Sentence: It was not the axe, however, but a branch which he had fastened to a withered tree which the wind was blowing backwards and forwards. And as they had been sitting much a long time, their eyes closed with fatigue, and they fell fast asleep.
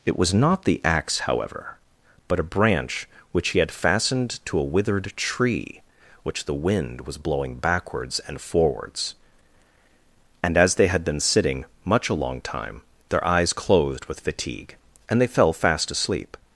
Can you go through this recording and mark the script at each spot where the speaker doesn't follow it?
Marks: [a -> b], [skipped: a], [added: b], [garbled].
It was not the axe, however, but a branch which he had fastened to a withered tree which the wind was blowing backwards and forwards. And as they had been sitting much a long time, their eyes closed with fatigue, and they fell fast asleep.